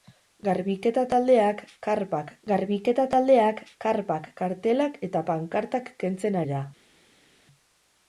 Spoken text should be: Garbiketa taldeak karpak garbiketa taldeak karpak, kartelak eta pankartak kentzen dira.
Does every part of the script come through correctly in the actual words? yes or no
yes